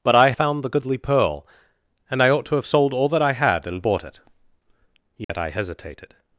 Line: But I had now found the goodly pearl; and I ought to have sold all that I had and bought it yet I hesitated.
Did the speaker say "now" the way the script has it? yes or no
no